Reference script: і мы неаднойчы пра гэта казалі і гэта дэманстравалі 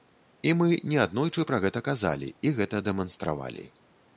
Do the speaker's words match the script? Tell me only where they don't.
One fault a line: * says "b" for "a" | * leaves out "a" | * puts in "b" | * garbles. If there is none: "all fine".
all fine